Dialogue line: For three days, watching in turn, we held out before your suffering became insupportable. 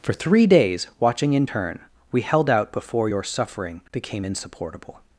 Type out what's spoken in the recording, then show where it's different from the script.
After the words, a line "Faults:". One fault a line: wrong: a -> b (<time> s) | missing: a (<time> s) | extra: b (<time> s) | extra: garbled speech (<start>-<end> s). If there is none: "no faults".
For three days, watching in turn, we held out before your suffering became insupportable.
Faults:
no faults